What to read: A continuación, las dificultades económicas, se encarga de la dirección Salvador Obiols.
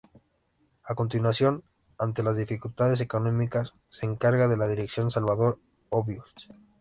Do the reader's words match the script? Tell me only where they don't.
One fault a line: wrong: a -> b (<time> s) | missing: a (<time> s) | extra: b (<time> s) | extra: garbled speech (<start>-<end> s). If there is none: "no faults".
extra: ante (2.0 s)